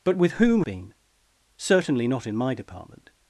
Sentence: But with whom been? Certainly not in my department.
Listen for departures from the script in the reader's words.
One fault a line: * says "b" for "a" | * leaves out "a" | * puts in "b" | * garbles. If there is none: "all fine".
all fine